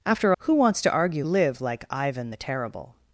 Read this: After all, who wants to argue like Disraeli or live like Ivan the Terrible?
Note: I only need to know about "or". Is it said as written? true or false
false